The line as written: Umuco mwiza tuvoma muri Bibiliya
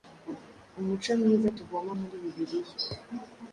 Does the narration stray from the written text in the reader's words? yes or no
no